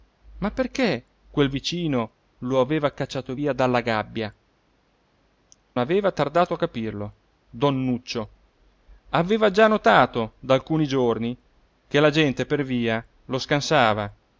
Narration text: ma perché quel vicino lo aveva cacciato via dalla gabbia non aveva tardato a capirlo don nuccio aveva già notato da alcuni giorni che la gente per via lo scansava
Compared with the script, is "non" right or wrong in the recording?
wrong